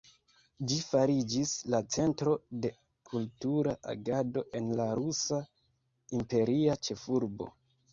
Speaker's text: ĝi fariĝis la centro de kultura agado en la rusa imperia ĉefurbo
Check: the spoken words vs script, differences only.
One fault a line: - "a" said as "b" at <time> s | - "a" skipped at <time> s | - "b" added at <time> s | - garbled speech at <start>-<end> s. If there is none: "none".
none